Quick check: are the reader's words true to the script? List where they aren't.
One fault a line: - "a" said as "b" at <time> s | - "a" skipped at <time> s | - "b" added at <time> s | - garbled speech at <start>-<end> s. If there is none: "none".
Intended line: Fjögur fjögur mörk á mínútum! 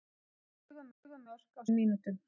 none